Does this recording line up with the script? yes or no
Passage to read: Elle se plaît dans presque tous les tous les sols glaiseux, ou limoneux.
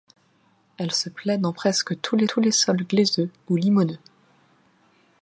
yes